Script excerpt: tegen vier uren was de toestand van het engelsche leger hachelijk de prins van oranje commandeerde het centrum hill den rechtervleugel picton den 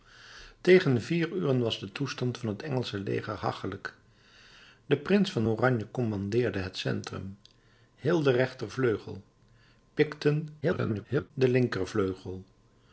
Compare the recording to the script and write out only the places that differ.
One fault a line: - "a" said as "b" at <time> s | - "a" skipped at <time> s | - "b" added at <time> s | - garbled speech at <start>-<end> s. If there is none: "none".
- garbled speech at 10.6-11.3 s